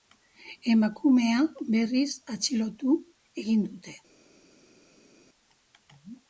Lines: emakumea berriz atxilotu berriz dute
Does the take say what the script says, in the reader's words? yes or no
no